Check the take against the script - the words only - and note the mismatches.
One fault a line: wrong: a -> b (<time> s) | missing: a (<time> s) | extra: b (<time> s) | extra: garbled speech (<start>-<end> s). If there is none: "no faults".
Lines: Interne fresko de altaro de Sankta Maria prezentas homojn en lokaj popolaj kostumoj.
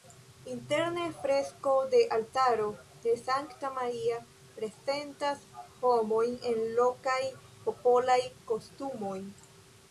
no faults